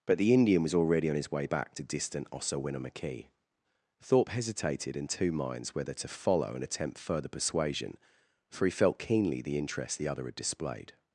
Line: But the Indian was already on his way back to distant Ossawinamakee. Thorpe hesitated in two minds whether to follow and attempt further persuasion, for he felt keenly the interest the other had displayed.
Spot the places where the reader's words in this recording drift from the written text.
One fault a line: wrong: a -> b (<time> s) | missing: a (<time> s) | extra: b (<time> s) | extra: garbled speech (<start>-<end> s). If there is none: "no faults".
no faults